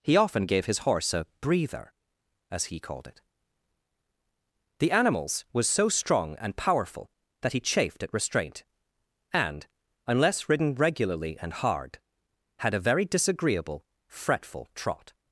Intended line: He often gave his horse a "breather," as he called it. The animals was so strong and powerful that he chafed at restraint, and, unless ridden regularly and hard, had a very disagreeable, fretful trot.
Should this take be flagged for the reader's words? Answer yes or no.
no